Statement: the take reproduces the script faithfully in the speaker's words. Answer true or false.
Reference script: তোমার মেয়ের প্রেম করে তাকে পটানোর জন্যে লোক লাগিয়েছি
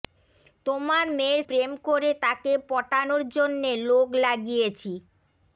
true